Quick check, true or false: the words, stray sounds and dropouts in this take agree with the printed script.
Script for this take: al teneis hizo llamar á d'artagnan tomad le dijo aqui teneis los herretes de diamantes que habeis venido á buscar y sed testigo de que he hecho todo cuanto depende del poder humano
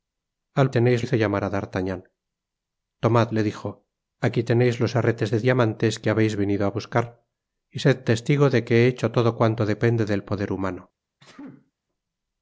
false